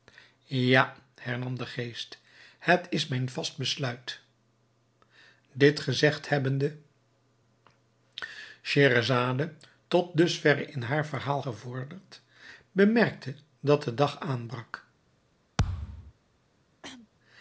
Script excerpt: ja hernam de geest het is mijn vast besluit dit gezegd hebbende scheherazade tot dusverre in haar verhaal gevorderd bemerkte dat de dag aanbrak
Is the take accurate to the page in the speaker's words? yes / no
yes